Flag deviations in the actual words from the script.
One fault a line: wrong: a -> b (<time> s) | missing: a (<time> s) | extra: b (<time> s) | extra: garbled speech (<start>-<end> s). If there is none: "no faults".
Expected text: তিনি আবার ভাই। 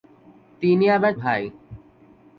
no faults